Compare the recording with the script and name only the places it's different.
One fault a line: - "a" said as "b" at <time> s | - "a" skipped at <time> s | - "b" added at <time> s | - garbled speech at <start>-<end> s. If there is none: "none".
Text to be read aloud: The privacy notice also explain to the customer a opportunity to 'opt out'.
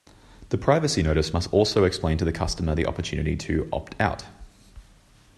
- "must" added at 1.3 s
- "a" said as "the" at 2.7 s